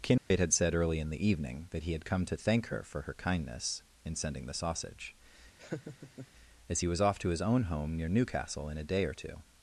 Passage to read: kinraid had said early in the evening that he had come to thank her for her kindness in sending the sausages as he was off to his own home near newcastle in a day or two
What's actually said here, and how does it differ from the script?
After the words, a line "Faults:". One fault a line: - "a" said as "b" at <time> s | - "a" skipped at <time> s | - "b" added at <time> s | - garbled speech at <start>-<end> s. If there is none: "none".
kinraid had said early in the evening that he had come to thank her for her kindness in sending the sausage as he was off to his own home near newcastle in a day or two
Faults:
- "sausages" said as "sausage" at 4.5 s